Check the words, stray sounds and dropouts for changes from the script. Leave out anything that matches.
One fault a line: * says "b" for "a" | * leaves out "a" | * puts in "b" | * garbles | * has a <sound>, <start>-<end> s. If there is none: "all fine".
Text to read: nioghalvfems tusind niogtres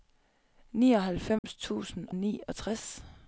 * has a dropout, 1.4-1.4 s